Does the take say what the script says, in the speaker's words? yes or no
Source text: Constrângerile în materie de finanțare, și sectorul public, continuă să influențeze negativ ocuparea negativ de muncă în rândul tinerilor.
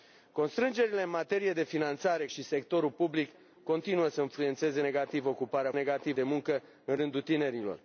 yes